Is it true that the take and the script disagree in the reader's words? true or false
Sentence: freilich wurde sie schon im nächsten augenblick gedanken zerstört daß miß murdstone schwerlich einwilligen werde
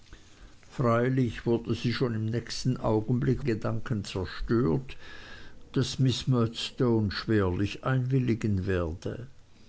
false